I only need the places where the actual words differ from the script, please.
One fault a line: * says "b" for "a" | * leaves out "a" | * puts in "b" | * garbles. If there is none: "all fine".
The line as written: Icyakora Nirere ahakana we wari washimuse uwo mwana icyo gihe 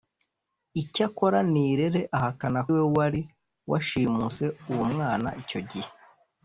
all fine